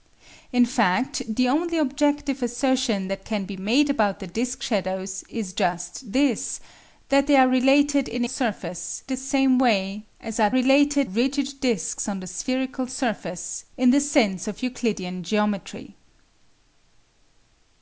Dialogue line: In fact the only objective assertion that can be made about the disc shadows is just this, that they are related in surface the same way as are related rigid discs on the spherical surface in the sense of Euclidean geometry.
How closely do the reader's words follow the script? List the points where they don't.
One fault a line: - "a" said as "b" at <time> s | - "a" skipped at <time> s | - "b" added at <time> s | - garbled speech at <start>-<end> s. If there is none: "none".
none